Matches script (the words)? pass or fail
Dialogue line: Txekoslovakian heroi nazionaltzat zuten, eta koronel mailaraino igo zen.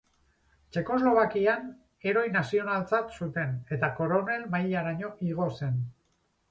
pass